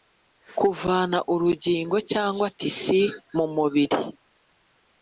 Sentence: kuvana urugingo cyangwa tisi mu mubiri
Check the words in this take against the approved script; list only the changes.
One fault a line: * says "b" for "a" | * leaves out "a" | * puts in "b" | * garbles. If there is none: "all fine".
all fine